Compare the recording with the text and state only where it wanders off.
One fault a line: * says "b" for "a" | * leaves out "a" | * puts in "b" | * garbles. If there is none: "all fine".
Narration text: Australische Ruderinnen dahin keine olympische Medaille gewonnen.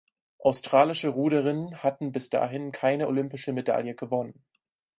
* puts in "hatten bis"